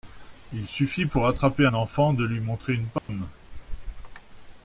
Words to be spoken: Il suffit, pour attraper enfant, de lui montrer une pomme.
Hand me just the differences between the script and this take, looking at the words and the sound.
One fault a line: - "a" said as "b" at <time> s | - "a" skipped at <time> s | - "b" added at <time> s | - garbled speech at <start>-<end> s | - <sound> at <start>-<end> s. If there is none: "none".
- dropout at 3.0-3.1 s